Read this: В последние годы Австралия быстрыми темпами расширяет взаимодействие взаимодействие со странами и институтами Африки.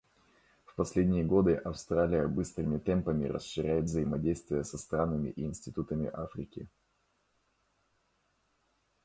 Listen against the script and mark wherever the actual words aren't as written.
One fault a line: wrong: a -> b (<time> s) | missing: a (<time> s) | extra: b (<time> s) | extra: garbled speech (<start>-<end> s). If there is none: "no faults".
missing: взаимодействие (4.6 s)